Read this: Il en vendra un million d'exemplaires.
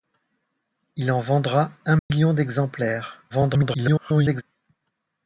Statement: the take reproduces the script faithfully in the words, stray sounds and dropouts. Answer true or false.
false